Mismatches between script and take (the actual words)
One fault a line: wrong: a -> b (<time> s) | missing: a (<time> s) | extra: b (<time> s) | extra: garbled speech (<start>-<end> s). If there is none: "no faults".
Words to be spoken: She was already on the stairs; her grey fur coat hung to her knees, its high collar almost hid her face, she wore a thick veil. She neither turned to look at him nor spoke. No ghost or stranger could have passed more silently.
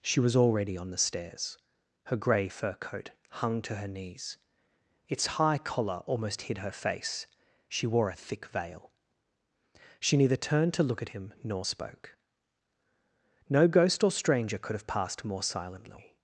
no faults